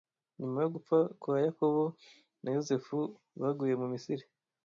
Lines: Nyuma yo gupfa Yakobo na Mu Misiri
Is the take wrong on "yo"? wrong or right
right